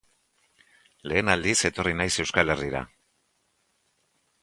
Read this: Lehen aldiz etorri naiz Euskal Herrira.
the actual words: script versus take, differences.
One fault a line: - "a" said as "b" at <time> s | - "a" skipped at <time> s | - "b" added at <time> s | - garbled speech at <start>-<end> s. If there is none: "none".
none